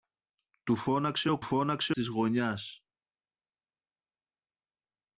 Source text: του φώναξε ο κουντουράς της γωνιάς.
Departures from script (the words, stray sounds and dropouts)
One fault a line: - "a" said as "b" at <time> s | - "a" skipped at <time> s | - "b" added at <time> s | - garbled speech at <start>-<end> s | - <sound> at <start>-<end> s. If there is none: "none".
- "κουντουράς" said as "φώναξε" at 1.4 s